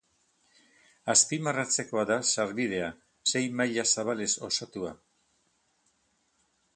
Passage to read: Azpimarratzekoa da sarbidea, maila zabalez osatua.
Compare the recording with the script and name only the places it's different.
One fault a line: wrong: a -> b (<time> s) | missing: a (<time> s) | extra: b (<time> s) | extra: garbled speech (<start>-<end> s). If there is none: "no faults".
extra: sei (3.3 s)